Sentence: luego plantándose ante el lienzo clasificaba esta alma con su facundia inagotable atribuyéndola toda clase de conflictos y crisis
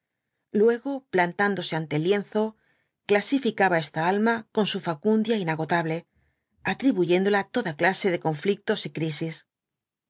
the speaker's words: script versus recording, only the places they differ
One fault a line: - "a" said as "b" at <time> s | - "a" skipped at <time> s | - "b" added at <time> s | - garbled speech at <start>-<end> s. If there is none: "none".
none